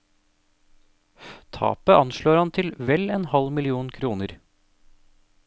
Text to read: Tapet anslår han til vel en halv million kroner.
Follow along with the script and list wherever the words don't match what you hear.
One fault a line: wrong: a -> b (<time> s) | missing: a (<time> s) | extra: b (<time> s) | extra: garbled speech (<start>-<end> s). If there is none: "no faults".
no faults